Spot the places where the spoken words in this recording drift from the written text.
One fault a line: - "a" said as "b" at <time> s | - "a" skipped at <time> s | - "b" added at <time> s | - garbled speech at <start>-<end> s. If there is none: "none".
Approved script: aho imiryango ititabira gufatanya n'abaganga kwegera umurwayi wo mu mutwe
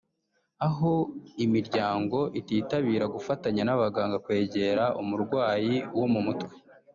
none